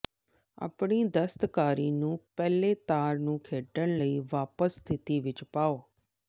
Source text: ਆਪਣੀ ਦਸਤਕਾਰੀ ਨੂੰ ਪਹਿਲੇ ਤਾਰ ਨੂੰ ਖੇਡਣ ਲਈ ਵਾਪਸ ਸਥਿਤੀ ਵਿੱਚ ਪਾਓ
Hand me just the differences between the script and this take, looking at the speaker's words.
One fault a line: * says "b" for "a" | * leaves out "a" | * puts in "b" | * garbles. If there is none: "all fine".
all fine